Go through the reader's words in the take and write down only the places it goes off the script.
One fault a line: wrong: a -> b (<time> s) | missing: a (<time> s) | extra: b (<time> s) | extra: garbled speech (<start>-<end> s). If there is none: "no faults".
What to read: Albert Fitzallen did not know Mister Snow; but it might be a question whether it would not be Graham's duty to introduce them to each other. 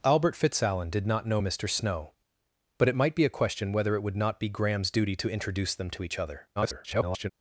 extra: garbled speech (6.6-7.3 s)